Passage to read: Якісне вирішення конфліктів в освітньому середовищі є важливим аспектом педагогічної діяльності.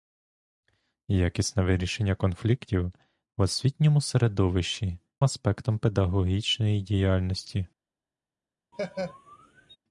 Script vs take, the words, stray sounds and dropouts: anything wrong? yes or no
yes